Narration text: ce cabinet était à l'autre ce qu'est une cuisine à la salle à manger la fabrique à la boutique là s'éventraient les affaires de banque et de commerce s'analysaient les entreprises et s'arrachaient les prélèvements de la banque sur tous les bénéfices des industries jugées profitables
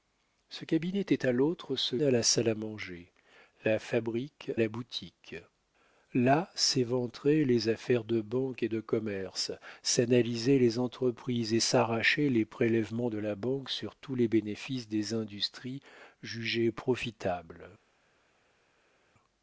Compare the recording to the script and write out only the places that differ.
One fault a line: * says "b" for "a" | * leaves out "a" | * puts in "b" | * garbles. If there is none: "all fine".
* leaves out "qu'est une cuisine"
* leaves out "à"